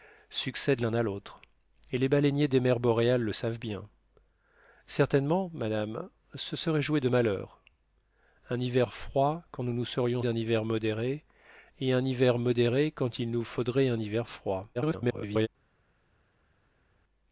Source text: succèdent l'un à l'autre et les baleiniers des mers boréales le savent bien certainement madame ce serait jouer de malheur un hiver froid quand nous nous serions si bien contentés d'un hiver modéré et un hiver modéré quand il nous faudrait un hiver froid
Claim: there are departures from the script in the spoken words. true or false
true